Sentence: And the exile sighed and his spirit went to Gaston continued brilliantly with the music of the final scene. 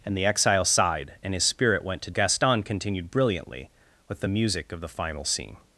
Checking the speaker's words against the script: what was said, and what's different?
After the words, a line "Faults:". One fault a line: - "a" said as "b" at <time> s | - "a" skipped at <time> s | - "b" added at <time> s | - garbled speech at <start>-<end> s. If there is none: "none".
And the exile sighed and his spirit went to Gaston continued brilliantly with the music of the final scene.
Faults:
none